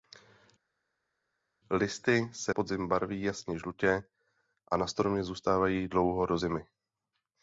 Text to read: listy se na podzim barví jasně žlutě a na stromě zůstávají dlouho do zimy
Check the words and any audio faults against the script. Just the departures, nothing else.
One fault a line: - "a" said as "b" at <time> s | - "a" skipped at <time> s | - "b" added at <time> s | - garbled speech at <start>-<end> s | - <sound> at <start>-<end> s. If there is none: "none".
- "na" skipped at 2.5 s